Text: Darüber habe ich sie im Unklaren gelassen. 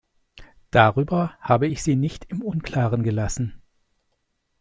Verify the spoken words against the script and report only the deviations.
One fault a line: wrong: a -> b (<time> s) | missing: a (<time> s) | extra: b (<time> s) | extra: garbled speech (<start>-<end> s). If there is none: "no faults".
extra: nicht (2.0 s)